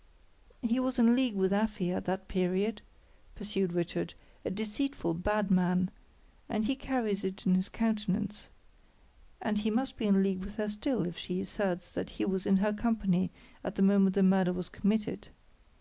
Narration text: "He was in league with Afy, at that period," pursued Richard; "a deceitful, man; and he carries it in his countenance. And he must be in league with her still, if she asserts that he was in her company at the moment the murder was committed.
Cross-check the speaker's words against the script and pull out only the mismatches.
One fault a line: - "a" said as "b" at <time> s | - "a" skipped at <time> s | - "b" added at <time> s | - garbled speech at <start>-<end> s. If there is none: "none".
- "bad" added at 5.1 s